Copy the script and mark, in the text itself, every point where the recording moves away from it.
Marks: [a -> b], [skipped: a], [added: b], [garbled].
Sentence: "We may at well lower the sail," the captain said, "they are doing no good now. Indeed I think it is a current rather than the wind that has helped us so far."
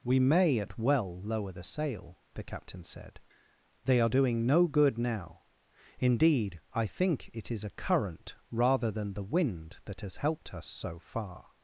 "We may at well lower the sail," the captain said, "they are doing no good now. Indeed I think it is a current rather than the wind that has helped us so far."